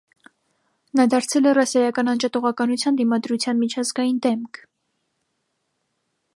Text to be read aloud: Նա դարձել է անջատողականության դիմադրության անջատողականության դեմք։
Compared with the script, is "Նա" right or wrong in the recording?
right